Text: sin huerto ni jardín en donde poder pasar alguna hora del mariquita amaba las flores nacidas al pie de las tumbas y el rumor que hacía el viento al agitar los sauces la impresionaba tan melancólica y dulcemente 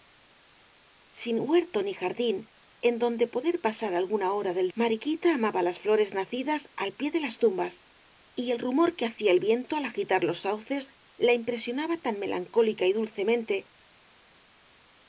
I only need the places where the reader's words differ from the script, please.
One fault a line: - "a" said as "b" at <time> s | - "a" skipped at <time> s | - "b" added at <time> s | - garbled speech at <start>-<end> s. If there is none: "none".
none